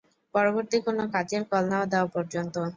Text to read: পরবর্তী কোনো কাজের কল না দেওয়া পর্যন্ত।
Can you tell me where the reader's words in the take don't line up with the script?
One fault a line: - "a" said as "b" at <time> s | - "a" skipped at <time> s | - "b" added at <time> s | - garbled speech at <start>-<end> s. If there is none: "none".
none